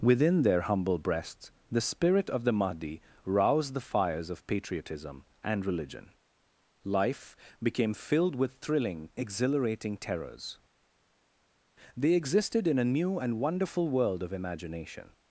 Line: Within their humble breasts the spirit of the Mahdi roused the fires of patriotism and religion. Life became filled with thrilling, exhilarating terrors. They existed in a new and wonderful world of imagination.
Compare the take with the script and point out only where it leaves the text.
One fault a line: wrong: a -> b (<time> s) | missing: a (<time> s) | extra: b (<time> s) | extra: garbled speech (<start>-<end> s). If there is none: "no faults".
no faults